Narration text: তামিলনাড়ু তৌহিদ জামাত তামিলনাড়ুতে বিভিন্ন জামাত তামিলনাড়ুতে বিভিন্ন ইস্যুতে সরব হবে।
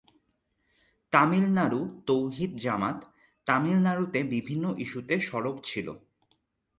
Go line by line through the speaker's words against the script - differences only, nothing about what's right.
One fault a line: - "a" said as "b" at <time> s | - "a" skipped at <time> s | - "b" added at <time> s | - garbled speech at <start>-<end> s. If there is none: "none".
- "জামাত তামিলনাড়ুতে বিভিন্ন" skipped at 4.6 s
- "হবে" said as "ছিল" at 5.6 s